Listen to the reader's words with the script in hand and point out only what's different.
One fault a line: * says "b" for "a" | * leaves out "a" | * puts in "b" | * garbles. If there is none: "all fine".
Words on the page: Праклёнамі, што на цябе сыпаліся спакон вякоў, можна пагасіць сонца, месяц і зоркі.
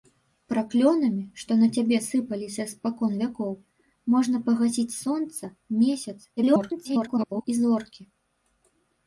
* garbles